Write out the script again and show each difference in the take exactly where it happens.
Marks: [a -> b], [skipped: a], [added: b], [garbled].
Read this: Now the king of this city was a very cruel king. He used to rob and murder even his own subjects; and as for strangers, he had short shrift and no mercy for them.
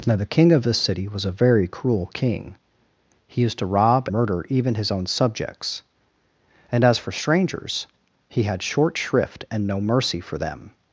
Now the king of this city was a very cruel king. He used to rob [skipped: and] murder even his own subjects; and as for strangers, he had short shrift and no mercy for them.